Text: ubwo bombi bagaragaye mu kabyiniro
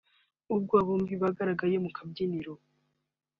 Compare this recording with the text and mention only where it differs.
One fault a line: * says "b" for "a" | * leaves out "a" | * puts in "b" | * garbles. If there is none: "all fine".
all fine